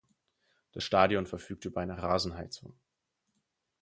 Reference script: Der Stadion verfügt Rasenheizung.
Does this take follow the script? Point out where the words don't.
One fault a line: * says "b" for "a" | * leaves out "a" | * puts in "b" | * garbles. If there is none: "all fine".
* says "Das" for "Der"
* puts in "über eine"